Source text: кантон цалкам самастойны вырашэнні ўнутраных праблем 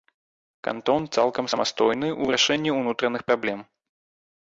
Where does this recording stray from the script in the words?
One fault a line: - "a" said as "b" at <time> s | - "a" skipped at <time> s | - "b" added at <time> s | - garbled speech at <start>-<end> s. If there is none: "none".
- "ў" added at 2.2 s